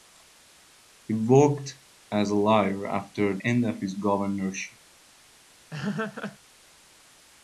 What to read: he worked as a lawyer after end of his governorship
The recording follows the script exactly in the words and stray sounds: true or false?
false